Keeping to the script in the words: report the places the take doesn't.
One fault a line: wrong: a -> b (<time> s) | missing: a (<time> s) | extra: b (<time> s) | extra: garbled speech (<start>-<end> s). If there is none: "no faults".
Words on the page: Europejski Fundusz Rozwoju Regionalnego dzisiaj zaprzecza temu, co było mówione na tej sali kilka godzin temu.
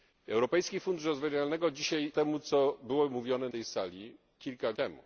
missing: zaprzecza (2.1 s)
missing: na (3.5 s)
missing: godzin (4.7 s)